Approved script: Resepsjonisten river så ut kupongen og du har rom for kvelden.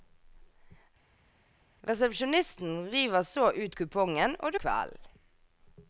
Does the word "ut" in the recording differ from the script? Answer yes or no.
no